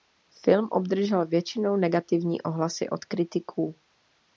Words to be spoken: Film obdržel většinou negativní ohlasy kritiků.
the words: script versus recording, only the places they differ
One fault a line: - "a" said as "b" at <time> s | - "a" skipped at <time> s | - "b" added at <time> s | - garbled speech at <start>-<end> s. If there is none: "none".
- "od" added at 2.9 s